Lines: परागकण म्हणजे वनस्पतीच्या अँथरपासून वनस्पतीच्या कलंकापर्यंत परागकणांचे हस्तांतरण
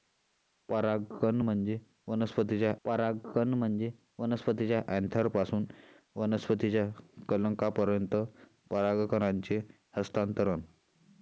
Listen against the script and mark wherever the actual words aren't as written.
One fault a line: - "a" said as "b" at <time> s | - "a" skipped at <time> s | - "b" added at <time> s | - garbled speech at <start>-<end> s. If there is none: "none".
- "परागकण म्हणजे वनस्पतीच्या" added at 2.8 s